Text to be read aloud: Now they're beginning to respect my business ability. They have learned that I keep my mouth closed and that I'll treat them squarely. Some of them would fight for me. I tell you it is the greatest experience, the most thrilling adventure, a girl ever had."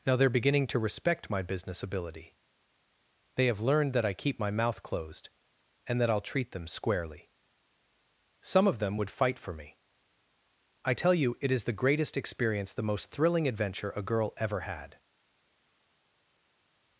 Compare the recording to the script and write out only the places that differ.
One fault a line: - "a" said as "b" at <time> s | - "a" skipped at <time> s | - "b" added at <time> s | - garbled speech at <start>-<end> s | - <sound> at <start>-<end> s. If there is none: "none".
none